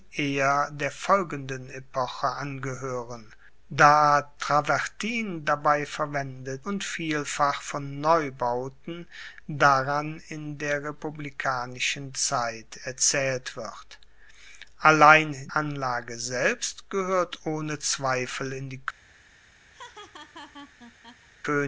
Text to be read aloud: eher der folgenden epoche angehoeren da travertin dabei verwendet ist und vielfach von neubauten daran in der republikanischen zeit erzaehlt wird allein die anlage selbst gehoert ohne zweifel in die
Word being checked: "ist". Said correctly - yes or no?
no